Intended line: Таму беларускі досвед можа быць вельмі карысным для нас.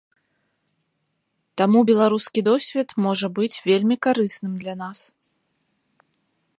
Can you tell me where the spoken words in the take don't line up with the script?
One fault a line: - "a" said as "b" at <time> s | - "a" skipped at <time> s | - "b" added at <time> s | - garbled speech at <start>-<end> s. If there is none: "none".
none